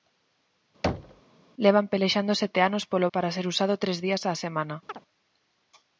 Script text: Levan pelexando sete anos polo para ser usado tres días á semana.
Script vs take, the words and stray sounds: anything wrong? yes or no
yes